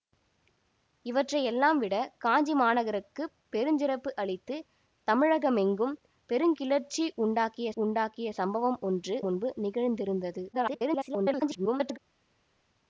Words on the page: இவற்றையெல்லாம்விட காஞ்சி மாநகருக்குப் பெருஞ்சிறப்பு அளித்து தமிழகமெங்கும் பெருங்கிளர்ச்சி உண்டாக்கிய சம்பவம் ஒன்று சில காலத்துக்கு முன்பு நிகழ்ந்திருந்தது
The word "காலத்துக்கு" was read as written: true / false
false